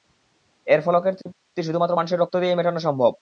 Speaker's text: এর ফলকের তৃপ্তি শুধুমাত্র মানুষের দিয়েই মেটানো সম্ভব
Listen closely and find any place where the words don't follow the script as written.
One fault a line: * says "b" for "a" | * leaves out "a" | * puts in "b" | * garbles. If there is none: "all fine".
* puts in "রক্ত"